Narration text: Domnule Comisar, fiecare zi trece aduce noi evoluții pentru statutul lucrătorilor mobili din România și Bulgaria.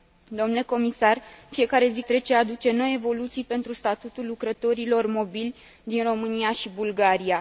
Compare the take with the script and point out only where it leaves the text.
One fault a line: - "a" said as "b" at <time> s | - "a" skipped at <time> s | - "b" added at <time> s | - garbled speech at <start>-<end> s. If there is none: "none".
none